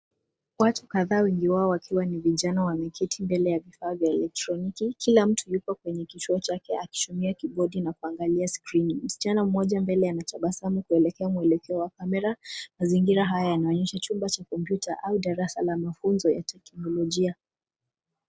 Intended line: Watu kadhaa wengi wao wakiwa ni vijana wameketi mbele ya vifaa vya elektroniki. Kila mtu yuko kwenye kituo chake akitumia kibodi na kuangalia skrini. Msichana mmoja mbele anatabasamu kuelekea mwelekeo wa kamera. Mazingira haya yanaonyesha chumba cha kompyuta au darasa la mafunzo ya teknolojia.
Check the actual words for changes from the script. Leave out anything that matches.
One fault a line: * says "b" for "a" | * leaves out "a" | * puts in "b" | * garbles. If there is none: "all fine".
all fine